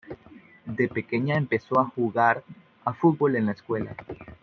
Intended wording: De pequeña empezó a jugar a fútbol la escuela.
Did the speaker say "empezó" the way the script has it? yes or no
yes